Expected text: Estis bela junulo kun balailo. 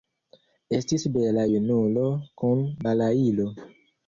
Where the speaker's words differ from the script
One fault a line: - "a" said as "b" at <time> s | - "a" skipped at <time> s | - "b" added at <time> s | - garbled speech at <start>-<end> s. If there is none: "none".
none